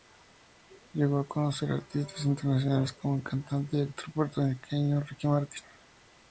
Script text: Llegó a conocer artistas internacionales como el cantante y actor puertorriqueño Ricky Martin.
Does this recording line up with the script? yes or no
yes